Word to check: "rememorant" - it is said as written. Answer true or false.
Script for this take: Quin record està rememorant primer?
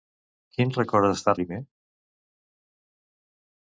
false